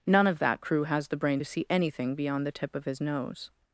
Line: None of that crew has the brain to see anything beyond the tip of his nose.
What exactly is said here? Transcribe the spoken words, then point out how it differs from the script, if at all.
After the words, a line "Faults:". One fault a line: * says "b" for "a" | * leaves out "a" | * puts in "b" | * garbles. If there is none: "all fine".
None of that crew has the brain to see anything beyond the tip of his nose.
Faults:
all fine